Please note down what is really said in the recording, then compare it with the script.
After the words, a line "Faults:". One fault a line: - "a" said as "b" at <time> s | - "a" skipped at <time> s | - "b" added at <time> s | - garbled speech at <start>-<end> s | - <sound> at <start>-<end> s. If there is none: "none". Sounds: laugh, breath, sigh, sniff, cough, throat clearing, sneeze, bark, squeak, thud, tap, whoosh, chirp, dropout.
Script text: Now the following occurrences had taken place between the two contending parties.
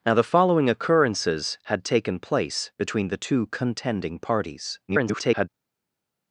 Now the following occurrences had taken place between the two contending parties. [garbled]
Faults:
- garbled speech at 4.9-5.5 s